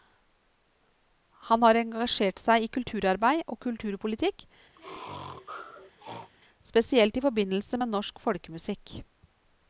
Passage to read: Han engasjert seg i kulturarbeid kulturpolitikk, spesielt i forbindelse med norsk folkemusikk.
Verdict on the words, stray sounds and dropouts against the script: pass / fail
fail